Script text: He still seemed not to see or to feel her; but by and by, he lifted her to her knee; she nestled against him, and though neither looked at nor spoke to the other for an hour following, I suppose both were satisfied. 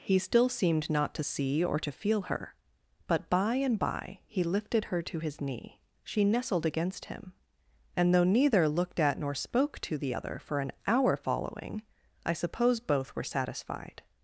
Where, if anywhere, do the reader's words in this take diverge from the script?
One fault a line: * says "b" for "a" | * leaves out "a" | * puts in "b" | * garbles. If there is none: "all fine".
* says "his" for "her"